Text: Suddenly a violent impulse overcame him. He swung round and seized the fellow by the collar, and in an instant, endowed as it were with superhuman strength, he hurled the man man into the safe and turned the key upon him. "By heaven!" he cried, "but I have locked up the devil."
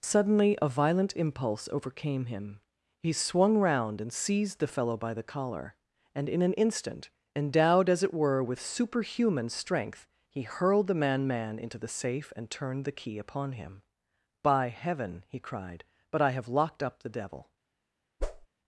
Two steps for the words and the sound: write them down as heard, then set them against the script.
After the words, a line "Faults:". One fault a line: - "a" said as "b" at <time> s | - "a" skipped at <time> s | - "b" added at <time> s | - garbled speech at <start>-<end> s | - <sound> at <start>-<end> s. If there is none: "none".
Suddenly a violent impulse overcame him. He swung round and seized the fellow by the collar, and in an instant, endowed as it were with superhuman strength, he hurled the man man into the safe and turned the key upon him. "By heaven!" he cried, "but I have locked up the devil."
Faults:
- whoosh at 18.2-18.5 s